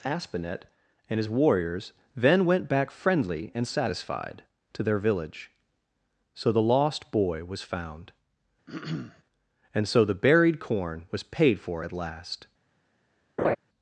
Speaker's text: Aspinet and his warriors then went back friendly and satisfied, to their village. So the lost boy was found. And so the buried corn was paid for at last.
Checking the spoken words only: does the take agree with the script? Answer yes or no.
yes